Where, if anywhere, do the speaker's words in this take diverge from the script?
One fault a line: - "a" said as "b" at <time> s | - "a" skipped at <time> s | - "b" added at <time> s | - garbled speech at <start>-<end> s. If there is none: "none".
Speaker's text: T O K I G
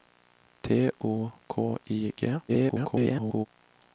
- garbled speech at 2.5-3.5 s